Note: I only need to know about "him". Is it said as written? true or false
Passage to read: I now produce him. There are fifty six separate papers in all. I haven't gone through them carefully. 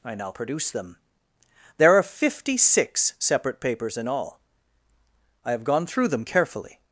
false